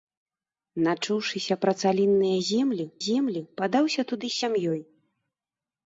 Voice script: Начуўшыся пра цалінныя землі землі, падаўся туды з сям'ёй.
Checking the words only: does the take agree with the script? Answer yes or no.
yes